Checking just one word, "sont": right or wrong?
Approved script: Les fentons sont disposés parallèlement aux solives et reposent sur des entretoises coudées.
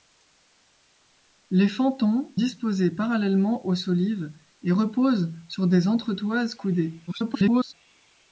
wrong